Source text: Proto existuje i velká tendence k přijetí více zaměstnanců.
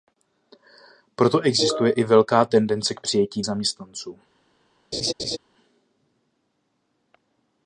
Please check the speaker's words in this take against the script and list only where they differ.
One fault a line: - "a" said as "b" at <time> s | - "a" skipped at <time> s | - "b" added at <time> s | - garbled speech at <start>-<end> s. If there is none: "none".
- "více" skipped at 3.4 s